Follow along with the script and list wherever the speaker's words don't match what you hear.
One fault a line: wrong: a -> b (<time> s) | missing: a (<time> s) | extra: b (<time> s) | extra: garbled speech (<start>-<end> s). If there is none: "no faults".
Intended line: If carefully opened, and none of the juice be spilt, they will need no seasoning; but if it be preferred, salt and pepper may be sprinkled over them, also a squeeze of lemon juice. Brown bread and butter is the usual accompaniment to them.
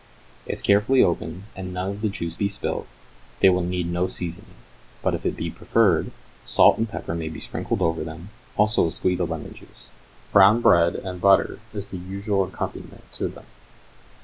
no faults